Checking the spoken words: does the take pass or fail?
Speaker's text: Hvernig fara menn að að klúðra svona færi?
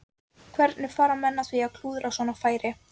fail